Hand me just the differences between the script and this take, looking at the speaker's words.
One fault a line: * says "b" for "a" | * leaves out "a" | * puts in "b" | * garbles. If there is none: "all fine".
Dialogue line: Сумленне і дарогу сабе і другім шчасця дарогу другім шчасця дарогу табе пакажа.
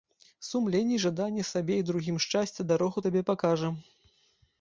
* says "жаданне" for "дарогу"
* leaves out "другім шчасця дарогу"